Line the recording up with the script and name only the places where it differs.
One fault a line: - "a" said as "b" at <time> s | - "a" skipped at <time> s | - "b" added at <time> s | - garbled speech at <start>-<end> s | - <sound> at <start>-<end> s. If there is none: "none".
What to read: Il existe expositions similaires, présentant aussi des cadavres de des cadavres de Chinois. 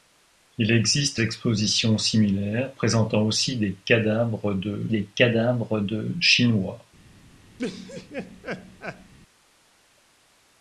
- laugh at 7.6-9.1 s